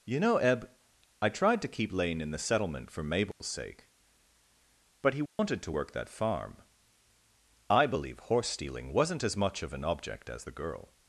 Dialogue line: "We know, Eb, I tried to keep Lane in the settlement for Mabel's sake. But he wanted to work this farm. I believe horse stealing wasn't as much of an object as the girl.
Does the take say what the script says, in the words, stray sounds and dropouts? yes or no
no